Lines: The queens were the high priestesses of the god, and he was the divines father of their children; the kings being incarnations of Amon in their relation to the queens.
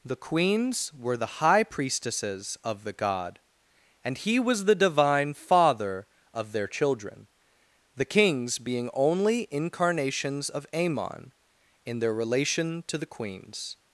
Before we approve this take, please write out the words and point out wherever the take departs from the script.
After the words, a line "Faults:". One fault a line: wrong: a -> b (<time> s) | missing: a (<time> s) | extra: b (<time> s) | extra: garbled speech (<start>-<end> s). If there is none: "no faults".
The queens were the high priestesses of the god, and he was the divine father of their children; the kings being only incarnations of Amon in their relation to the queens.
Faults:
wrong: divines -> divine (4.7 s)
extra: only (8.9 s)